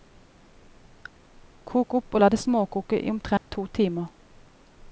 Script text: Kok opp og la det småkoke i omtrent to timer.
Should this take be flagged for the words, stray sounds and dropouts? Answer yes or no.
yes